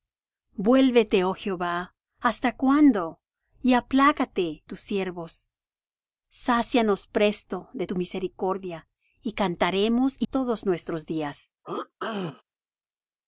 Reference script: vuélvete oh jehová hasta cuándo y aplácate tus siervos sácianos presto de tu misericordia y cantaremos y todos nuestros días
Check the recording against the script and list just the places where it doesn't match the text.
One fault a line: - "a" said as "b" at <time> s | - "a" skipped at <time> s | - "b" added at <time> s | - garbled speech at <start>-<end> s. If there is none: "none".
none